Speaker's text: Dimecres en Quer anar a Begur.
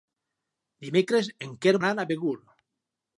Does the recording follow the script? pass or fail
pass